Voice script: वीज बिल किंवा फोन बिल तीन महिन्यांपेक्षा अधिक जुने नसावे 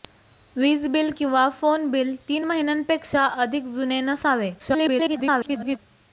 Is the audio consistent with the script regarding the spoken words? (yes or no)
no